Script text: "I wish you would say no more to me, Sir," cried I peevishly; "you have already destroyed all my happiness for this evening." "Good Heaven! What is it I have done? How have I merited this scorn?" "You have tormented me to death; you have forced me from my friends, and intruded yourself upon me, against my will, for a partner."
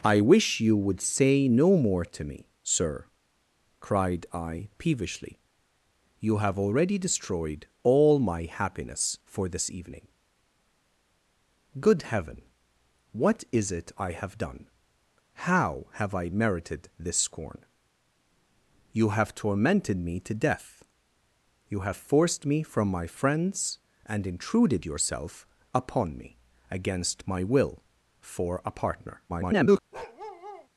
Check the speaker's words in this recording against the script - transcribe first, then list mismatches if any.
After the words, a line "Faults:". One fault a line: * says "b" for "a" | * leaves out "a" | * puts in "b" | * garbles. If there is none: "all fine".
"I wish you would say no more to me, Sir," cried I peevishly; "you have already destroyed all my happiness for this evening." "Good Heaven! What is it I have done? How have I merited this scorn?" "You have tormented me to death; you have forced me from my friends, and intruded yourself upon me, against my will, for a partner." [garbled]
Faults:
* garbles